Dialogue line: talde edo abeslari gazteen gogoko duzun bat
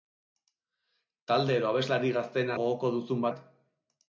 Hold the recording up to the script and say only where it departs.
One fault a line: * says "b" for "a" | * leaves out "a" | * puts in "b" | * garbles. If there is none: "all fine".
all fine